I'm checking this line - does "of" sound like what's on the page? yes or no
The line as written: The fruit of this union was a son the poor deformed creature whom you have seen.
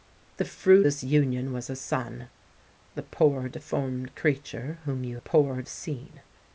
no